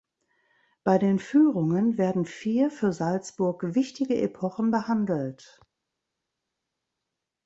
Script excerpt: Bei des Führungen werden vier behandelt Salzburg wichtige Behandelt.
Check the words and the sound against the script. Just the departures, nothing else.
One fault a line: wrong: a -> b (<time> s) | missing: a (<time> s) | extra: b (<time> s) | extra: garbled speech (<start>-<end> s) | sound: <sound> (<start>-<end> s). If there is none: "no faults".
wrong: des -> den (1.0 s)
wrong: behandelt -> für (2.7 s)
extra: Epochen (4.2 s)